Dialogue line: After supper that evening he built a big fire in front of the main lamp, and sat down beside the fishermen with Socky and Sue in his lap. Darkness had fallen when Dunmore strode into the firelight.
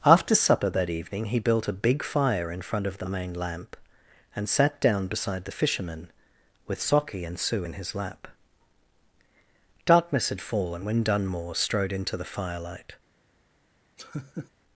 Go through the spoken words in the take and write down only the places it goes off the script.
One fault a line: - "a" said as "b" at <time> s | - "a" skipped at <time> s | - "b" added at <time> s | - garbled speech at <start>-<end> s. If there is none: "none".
none